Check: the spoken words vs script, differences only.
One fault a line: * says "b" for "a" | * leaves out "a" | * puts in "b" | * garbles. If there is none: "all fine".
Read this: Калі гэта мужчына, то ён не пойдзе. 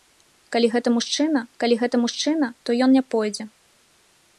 * puts in "калі гэта мужчына"